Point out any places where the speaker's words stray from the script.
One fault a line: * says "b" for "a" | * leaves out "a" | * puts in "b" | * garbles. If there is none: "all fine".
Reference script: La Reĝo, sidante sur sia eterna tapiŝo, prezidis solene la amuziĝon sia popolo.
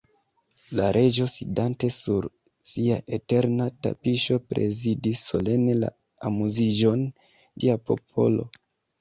all fine